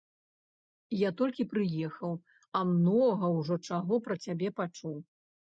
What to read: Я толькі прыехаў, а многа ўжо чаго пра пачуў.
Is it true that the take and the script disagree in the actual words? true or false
true